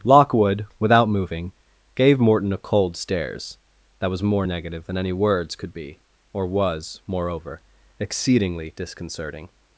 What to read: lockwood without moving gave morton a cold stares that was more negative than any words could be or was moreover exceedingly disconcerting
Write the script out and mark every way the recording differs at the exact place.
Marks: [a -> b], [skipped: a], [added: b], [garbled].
lockwood without moving gave morton a cold stares that was more negative than any words could be or was moreover exceedingly disconcerting